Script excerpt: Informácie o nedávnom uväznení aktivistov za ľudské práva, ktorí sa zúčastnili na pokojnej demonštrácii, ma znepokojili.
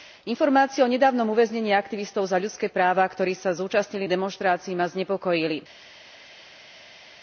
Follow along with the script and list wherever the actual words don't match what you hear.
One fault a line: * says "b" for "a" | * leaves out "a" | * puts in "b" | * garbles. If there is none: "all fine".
* leaves out "na pokojnej"